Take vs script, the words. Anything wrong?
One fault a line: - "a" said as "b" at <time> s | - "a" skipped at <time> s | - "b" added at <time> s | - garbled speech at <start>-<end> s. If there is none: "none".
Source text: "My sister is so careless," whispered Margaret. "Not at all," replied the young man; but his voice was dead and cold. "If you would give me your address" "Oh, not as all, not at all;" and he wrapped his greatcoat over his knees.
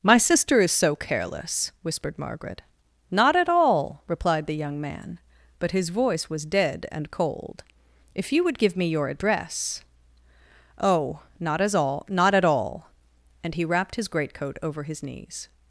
none